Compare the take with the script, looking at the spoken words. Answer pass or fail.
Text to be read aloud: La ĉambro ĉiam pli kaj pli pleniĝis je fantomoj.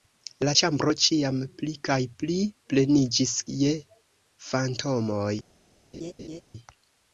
pass